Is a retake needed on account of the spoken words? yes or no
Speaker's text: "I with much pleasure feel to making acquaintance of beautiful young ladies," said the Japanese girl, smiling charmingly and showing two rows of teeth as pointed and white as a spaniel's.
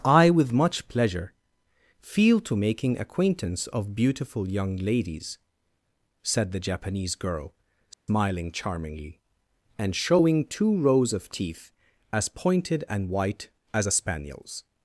no